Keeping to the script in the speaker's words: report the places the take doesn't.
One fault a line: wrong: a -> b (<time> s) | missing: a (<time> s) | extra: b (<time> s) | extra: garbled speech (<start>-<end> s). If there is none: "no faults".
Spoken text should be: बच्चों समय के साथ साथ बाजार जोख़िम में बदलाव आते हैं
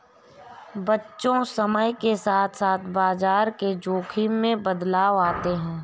extra: के (3.6 s)